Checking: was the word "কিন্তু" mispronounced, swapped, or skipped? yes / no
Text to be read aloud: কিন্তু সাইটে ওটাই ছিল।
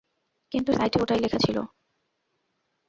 no